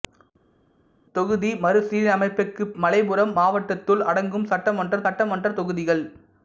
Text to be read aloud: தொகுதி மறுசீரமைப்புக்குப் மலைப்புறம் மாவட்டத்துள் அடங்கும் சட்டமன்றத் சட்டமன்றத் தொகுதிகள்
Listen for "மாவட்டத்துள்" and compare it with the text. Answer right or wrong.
right